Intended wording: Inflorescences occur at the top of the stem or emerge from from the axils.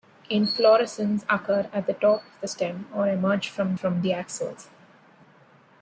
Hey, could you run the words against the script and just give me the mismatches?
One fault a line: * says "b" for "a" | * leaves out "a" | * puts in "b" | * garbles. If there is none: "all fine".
all fine